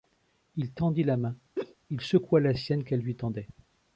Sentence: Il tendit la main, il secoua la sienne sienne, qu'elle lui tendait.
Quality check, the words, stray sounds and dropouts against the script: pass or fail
fail